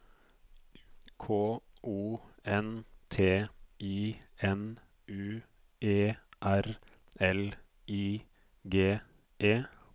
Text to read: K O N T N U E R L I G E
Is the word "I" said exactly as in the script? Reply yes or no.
yes